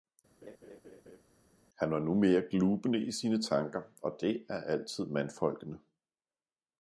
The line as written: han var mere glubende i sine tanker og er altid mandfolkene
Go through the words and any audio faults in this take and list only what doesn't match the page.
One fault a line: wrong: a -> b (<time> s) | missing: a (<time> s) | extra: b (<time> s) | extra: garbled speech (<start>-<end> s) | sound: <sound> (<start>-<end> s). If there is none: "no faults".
sound: laugh (0.4-1.2 s)
extra: nu (2.0 s)
extra: det (4.2 s)